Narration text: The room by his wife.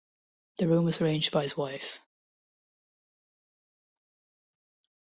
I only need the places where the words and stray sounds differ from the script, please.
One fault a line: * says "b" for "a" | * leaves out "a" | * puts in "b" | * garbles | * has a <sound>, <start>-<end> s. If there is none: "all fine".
* puts in "was arranged"